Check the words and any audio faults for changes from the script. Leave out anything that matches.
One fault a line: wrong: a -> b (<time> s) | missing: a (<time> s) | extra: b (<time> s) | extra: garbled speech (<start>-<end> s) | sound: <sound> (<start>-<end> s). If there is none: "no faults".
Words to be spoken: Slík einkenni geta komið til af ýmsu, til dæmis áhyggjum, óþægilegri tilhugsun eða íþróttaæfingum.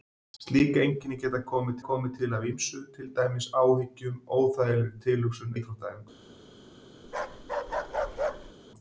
extra: komið (1.9 s)
missing: eða (5.5 s)
sound: bark (7.0-8.5 s)